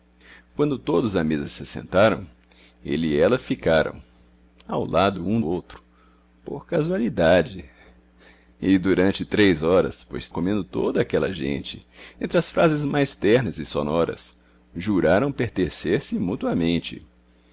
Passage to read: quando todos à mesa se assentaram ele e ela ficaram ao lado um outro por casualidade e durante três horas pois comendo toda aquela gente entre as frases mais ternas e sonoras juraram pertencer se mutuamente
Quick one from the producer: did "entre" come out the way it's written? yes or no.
yes